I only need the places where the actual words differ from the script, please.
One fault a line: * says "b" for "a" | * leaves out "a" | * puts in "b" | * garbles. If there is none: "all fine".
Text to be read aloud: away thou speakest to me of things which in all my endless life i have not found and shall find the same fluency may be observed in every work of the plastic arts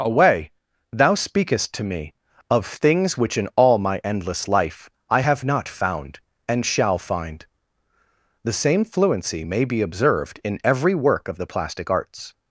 all fine